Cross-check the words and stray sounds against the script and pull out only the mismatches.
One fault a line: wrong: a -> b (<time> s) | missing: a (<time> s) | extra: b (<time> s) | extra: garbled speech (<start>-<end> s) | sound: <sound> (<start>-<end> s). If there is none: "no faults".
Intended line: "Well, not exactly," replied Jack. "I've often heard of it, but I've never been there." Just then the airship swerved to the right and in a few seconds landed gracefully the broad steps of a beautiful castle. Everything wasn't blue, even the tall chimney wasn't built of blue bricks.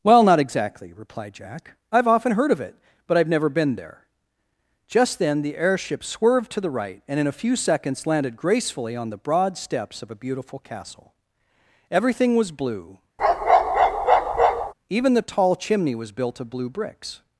extra: on (8.9 s)
wrong: wasn't -> was (12.3 s)
sound: bark (13.2-14.7 s)
wrong: wasn't -> was (16.0 s)